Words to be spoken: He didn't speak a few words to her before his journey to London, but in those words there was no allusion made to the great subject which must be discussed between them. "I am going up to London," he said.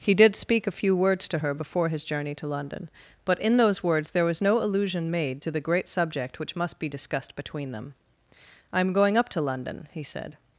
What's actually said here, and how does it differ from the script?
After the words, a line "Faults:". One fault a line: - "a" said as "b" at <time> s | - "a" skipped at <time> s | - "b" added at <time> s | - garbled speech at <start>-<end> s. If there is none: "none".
He did speak a few words to her before his journey to London, but in those words there was no allusion made to the great subject which must be discussed between them. "I am going up to London," he said.
Faults:
- "didn't" said as "did" at 0.1 s